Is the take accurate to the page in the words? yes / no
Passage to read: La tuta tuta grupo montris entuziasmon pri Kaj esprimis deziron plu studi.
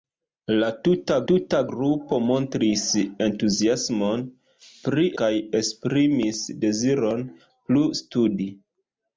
yes